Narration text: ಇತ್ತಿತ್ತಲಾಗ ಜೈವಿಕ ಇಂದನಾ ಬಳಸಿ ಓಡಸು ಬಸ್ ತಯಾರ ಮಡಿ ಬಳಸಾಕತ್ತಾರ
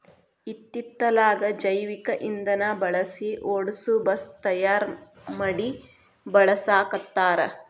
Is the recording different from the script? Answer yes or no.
no